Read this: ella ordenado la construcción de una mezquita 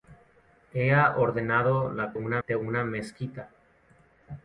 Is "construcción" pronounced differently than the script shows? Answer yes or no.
yes